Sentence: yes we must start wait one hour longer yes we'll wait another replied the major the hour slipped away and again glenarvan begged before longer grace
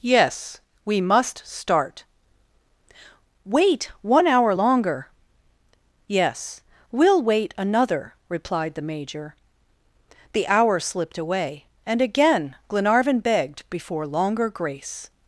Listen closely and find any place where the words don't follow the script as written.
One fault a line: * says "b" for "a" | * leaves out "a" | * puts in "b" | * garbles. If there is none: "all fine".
all fine